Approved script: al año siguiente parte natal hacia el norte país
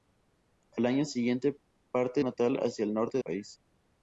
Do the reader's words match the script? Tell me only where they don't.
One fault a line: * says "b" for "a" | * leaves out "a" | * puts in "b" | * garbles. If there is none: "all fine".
all fine